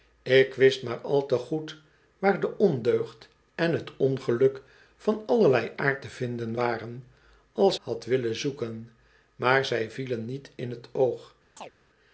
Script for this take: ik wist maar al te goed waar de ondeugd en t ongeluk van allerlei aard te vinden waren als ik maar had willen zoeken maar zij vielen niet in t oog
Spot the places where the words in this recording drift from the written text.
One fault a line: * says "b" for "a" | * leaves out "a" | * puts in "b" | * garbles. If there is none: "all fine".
* leaves out "ik maar"